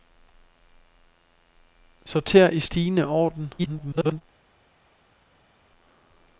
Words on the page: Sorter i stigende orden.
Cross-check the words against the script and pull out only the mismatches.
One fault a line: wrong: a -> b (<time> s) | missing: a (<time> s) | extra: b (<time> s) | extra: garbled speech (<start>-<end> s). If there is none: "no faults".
extra: garbled speech (3.6-4.2 s)